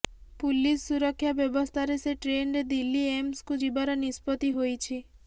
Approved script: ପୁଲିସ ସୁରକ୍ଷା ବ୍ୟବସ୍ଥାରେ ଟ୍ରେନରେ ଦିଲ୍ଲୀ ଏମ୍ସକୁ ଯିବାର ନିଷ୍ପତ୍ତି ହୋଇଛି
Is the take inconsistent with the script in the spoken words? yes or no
yes